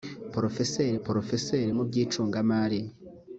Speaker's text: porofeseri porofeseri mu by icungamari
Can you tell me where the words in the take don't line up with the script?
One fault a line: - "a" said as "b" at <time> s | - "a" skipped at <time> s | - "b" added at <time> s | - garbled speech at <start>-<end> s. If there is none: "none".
none